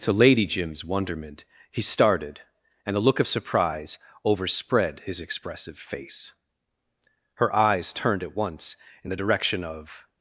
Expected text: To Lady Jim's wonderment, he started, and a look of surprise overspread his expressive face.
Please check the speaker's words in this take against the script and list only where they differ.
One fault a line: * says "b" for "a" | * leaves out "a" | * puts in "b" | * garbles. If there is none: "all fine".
* puts in "Her eyes turned at once in the direction of"